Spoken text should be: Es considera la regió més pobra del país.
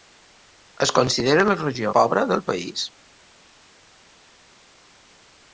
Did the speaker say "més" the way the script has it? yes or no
no